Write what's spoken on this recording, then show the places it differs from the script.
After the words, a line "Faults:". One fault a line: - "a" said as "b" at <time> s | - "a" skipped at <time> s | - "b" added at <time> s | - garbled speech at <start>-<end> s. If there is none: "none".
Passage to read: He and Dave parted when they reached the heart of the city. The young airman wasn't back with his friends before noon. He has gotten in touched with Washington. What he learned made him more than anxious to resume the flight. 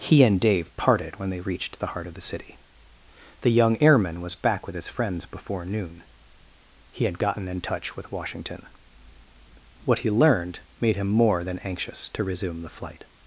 He and Dave parted when they reached the heart of the city. The young airman was back with his friends before noon. He had gotten in touch with Washington. What he learned made him more than anxious to resume the flight.
Faults:
- "wasn't" said as "was" at 4.2 s
- "has" said as "had" at 7.1 s
- "touched" said as "touch" at 7.6 s